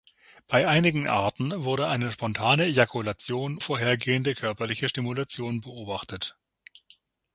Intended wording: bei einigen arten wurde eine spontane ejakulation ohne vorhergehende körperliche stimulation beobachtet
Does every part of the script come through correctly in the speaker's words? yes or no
no